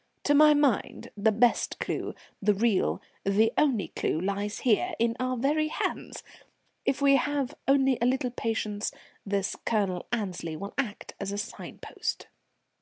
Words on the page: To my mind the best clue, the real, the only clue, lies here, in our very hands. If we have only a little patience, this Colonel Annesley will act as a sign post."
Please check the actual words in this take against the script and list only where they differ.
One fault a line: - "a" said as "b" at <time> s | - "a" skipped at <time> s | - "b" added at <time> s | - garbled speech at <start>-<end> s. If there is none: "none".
none